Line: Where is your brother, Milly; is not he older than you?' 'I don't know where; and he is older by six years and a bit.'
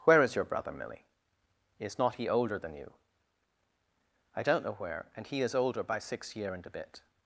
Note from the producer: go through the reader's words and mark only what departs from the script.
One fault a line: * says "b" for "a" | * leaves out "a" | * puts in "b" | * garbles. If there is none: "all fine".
* says "year" for "years"